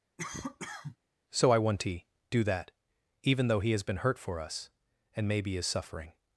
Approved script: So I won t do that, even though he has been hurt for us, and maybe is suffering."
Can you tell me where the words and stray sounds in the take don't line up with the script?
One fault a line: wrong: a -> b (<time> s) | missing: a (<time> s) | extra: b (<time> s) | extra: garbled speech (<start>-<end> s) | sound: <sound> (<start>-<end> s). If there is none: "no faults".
sound: cough (0.2-1.0 s)
wrong: won t -> want to (1.6 s)